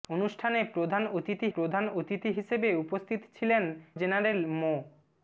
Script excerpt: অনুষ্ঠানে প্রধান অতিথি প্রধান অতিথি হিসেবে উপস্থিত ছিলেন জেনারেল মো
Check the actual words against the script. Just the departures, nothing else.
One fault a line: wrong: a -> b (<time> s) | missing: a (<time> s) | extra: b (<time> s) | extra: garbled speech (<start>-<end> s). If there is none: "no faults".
no faults